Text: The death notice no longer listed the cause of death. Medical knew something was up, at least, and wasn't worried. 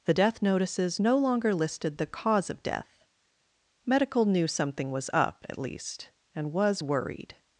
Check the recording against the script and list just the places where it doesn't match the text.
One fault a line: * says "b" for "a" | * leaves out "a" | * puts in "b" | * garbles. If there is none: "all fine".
* says "notices" for "notice"
* says "was" for "wasn't"